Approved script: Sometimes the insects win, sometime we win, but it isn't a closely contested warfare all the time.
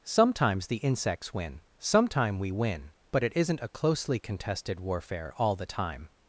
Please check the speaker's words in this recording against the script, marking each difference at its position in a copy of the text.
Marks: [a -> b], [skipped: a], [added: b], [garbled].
Sometimes the insects win, sometime we win, but it isn't a closely contested warfare all the time.